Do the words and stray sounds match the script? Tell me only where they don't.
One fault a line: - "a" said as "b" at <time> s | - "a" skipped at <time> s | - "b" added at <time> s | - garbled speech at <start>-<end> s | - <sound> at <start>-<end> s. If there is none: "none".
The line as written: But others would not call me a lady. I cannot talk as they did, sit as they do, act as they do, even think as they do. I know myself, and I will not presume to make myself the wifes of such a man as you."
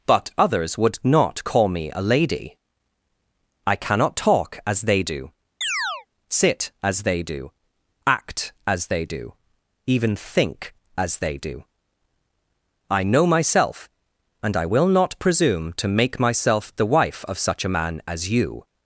- "did" said as "do" at 5.0 s
- chirp at 5.6-6.1 s
- "wifes" said as "wife" at 16.9 s